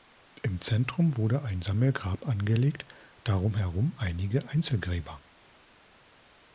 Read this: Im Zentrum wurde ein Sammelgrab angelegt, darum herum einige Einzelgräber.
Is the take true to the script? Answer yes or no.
yes